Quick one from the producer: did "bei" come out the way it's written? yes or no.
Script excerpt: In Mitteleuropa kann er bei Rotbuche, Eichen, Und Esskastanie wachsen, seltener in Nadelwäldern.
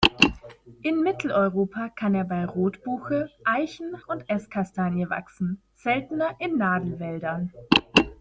yes